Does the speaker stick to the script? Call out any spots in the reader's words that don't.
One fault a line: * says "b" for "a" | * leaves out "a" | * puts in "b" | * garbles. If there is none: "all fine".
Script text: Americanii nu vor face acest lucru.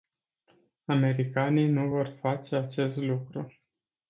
all fine